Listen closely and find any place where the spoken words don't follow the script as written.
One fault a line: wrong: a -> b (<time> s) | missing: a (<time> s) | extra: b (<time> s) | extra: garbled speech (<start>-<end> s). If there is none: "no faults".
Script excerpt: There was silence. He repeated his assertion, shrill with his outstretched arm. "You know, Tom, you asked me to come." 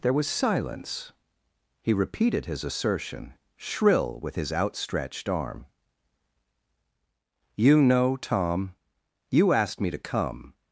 no faults